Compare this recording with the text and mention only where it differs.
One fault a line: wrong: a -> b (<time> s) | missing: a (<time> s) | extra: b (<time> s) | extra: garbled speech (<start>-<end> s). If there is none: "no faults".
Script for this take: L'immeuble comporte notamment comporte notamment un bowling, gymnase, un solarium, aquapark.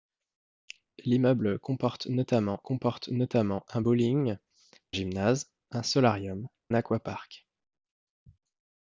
no faults